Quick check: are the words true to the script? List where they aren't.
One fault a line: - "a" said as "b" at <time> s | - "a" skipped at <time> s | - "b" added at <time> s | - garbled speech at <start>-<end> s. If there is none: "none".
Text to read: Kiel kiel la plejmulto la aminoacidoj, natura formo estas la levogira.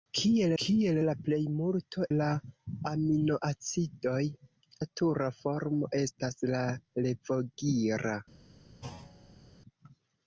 none